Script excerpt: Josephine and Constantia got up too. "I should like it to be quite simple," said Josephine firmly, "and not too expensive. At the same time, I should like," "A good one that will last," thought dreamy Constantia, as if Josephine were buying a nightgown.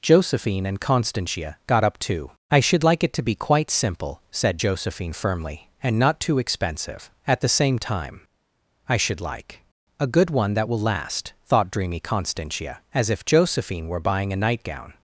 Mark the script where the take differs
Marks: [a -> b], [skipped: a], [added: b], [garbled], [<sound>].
Josephine and Constantia got up too. "I should like it to be quite simple," said Josephine firmly, "and not too expensive. At the same time, I should like," "A good one that will last," thought dreamy Constantia, as if Josephine were buying a nightgown.